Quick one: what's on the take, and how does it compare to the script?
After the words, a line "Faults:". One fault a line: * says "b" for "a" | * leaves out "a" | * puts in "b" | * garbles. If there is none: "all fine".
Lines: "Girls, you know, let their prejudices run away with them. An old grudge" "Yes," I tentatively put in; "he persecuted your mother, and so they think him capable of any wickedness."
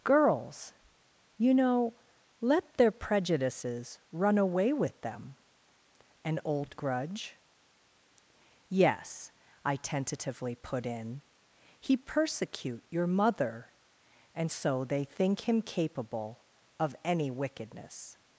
"Girls, you know, let their prejudices run away with them. An old grudge" "Yes," I tentatively put in; "he persecute your mother, and so they think him capable of any wickedness."
Faults:
* says "persecute" for "persecuted"